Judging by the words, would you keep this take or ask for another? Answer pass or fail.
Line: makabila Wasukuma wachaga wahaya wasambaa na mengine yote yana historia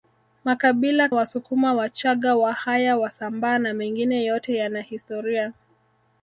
pass